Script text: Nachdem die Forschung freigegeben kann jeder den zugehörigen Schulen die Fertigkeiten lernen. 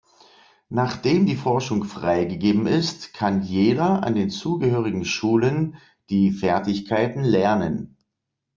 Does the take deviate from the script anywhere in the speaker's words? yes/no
yes